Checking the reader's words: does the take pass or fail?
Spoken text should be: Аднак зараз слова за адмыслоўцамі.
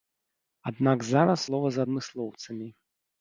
pass